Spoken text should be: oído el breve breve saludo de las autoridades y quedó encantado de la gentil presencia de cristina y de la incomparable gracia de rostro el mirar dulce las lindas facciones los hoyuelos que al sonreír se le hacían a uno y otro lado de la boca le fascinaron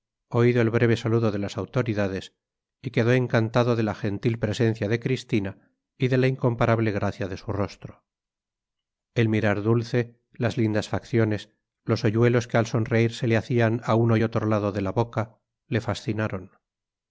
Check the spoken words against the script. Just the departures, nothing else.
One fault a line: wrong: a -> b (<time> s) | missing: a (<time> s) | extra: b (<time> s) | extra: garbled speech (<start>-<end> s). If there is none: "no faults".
missing: breve (1.0 s)
extra: su (7.4 s)